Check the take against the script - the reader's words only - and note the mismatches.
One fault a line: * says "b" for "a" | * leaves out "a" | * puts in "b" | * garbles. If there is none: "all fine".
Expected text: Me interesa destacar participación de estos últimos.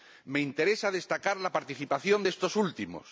* puts in "la"